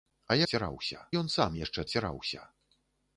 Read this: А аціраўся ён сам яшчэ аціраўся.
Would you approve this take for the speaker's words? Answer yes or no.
yes